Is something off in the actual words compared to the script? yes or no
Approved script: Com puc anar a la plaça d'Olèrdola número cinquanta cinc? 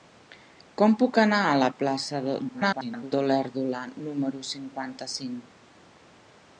yes